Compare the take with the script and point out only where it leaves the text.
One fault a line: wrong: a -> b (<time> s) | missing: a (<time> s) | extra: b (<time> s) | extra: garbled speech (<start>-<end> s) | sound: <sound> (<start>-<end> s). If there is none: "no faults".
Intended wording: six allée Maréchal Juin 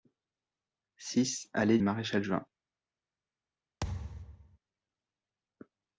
sound: thud (3.8-4.6 s)